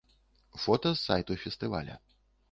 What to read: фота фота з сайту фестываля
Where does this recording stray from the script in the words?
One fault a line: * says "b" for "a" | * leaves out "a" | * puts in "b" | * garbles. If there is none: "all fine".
* leaves out "фота"